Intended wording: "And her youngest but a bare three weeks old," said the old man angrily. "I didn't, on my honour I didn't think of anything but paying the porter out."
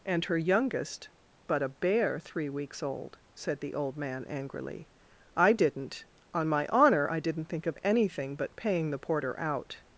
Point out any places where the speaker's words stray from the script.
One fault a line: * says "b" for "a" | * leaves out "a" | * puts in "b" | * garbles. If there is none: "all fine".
all fine